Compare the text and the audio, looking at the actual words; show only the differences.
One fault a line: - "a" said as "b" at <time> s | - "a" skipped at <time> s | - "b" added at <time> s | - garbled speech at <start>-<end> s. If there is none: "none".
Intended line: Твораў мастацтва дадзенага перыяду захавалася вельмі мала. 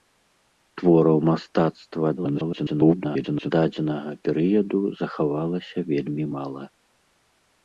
- garbled speech at 2.2-3.5 s